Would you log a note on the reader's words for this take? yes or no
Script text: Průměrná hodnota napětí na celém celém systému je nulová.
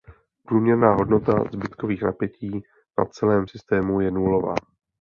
yes